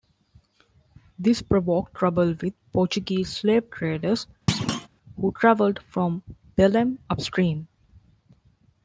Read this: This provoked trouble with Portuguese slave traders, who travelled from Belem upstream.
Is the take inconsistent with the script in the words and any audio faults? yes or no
yes